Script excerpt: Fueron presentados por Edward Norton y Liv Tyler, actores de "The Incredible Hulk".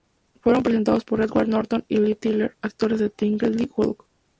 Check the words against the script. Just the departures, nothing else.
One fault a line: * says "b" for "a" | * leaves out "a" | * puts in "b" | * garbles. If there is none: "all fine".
all fine